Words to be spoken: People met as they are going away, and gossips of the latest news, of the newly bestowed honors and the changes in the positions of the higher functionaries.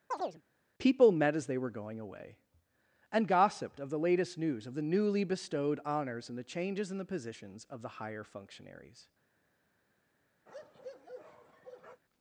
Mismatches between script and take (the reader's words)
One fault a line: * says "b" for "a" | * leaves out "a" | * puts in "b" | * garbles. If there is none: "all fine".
* says "were" for "are"
* says "gossiped" for "gossips"